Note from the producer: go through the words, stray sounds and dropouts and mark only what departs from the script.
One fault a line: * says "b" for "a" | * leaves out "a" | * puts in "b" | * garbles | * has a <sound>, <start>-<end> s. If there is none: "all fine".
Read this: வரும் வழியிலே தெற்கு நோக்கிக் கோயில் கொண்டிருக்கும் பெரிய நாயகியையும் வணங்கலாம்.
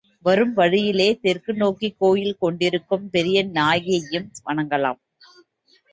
all fine